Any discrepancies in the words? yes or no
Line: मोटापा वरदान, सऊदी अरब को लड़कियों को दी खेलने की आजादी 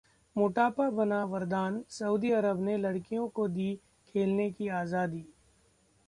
yes